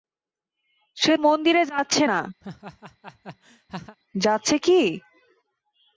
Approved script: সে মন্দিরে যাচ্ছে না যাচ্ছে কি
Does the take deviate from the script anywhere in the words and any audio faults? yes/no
yes